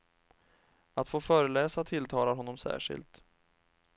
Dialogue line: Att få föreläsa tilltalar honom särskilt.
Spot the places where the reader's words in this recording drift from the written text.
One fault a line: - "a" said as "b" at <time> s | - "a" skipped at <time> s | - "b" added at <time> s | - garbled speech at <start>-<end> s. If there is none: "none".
none